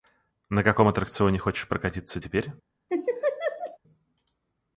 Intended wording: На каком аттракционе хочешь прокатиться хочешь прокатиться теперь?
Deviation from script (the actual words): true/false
true